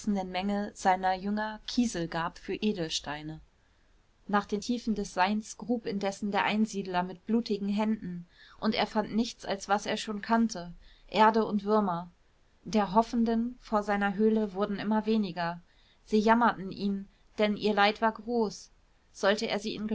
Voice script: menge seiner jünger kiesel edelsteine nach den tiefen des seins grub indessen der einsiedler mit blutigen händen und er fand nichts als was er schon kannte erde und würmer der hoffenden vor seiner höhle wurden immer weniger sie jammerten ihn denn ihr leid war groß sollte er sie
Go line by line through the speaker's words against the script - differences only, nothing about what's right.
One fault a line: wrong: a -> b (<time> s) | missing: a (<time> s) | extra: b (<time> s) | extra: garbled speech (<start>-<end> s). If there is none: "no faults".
extra: gab für (2.1 s)